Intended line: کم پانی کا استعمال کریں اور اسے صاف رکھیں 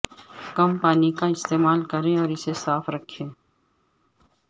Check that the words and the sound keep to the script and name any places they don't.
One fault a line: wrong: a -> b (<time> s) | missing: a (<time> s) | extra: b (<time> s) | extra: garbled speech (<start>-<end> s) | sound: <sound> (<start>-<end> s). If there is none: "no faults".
no faults